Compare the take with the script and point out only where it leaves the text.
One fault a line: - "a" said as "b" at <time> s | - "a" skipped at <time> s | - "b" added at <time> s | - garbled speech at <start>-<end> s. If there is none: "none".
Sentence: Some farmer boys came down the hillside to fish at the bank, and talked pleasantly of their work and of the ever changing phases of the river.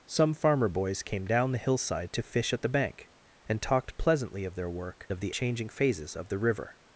- "and" skipped at 5.1 s
- "ever" skipped at 5.3 s